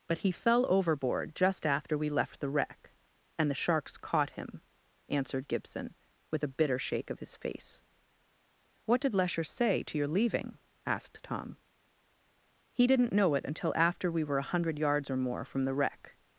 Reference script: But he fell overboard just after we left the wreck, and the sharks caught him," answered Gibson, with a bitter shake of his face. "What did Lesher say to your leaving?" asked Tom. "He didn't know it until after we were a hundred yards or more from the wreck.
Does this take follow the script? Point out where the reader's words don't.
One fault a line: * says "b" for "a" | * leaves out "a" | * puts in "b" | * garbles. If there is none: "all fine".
all fine